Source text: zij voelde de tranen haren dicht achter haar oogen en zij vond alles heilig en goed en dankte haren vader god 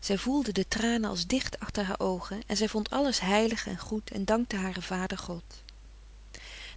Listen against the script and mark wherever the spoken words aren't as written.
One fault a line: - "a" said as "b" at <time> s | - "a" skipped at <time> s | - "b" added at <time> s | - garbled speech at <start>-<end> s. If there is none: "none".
- "haren" said as "als" at 1.1 s